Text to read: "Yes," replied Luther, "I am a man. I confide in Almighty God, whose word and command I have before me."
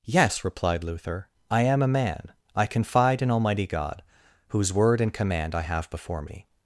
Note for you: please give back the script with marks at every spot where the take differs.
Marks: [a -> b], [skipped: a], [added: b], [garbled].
"Yes," replied Luther, "I am a man. I confide in Almighty God, whose word and command I have before me."